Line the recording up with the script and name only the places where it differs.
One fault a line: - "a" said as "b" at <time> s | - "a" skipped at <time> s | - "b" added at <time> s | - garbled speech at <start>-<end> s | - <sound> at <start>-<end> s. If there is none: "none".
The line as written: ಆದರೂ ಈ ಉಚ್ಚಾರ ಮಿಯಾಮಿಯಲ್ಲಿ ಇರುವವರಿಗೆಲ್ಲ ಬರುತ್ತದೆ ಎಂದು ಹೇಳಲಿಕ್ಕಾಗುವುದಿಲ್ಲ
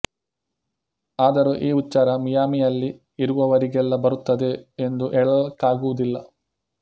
none